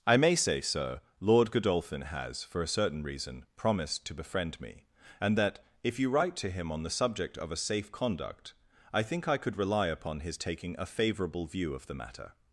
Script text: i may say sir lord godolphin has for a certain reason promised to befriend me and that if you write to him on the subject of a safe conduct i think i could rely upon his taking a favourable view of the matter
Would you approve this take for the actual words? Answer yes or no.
yes